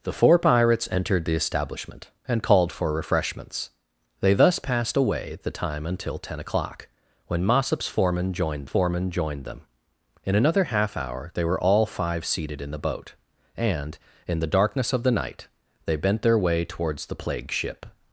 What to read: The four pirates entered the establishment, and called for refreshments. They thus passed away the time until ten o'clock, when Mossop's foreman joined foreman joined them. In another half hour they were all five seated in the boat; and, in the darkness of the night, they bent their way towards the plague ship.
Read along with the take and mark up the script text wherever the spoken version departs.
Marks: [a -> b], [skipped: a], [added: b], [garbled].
The four pirates entered the establishment, and called for refreshments. They thus passed away the time until ten o'clock, when Mossop's foreman joined foreman joined them. In another half hour they were all five seated in the boat; and, in the darkness of the night, they bent their way towards the plague ship.